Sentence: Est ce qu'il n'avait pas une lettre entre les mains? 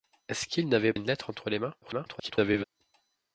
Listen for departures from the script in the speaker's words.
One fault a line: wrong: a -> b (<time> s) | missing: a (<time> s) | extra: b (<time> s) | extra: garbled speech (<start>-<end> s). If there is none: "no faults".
missing: pas (0.9 s)
extra: garbled speech (1.8-2.6 s)